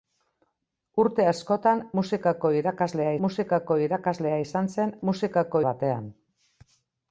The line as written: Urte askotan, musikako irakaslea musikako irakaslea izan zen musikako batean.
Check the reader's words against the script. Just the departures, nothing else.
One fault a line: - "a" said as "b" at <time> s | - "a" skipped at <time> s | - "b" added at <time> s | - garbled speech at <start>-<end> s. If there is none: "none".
none